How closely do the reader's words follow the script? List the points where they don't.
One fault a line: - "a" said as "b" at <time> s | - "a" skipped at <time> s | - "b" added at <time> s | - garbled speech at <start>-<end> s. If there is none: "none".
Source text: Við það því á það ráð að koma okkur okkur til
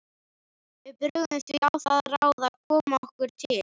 - "það" said as "brugðum" at 1.0 s
- "okkur" skipped at 3.4 s